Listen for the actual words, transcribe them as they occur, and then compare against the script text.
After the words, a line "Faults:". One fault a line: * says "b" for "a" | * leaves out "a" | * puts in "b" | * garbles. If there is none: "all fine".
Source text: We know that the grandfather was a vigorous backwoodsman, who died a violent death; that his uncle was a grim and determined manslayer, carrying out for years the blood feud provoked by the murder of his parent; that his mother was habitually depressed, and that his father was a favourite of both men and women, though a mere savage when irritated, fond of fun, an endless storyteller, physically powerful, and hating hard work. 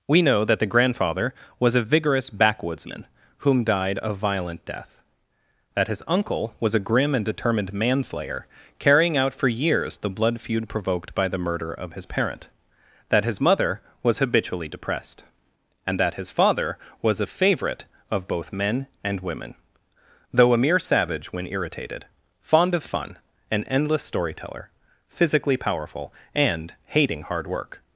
We know that the grandfather was a vigorous backwoodsman, whom died a violent death; that his uncle was a grim and determined manslayer, carrying out for years the blood feud provoked by the murder of his parent; that his mother was habitually depressed, and that his father was a favourite of both men and women, though a mere savage when irritated, fond of fun, an endless storyteller, physically powerful, and hating hard work.
Faults:
* says "whom" for "who"